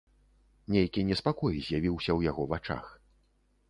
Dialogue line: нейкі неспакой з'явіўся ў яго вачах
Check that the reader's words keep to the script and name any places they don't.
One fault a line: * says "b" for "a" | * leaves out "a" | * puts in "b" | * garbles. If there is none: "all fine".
all fine